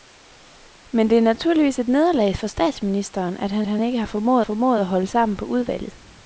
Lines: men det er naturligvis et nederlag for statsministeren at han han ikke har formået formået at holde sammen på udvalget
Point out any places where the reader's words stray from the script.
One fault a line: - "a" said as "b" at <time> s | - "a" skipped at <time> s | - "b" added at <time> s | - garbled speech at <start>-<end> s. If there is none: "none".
none